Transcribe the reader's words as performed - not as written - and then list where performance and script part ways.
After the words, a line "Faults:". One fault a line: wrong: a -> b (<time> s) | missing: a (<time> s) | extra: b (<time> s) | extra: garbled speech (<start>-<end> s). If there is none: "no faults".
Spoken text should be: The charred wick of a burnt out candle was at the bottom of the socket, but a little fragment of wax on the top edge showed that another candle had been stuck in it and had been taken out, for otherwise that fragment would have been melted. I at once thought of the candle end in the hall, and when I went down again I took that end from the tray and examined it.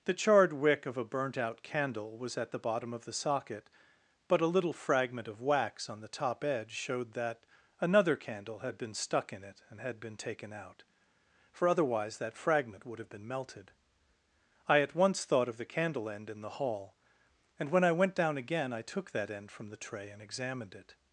The charred wick of a burnt out candle was at the bottom of the socket, but a little fragment of wax on the top edge showed that another candle had been stuck in it and had been taken out, for otherwise that fragment would have been melted. I at once thought of the candle end in the hall, and when I went down again I took that end from the tray and examined it.
Faults:
no faults